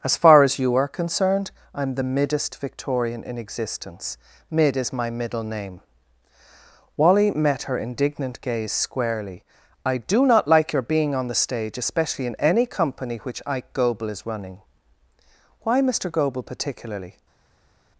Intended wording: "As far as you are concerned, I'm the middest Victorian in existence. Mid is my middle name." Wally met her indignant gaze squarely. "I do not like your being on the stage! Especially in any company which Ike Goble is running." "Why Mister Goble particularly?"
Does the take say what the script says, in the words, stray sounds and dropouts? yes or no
yes